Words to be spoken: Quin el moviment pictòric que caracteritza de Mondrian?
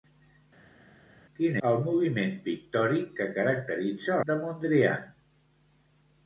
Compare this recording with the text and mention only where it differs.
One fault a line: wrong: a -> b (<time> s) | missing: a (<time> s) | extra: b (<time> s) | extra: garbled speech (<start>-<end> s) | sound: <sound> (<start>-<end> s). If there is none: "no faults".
no faults